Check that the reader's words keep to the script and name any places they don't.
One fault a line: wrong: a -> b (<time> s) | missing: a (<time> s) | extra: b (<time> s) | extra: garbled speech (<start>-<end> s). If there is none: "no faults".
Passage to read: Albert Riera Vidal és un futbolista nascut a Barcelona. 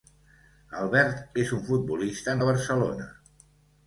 missing: Riera Vidal (1.4 s)
missing: nascut (2.4 s)